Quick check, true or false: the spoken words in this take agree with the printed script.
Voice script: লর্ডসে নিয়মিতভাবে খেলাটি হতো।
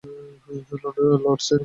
false